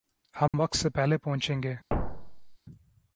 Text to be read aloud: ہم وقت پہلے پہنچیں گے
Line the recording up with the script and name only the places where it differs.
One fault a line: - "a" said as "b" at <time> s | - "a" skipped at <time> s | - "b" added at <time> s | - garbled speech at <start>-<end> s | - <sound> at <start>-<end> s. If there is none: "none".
- dropout at 0.5-0.5 s
- "سے" added at 0.8 s
- thud at 1.9-2.6 s